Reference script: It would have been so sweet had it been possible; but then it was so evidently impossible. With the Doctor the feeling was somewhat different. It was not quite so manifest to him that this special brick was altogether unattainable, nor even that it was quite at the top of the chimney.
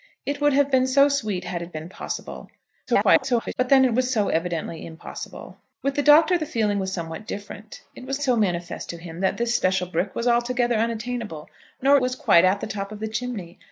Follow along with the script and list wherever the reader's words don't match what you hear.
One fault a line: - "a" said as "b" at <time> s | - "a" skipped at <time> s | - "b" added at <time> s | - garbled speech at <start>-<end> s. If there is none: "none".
- garbled speech at 2.9-3.5 s
- "not quite" skipped at 8.2 s
- "even that it" skipped at 12.0 s